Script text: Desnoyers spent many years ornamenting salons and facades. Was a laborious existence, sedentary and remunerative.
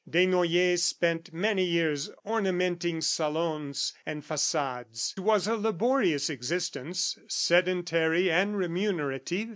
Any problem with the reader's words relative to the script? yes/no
no